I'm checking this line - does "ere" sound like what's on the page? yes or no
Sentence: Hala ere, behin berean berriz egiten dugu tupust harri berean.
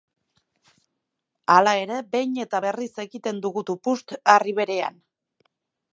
yes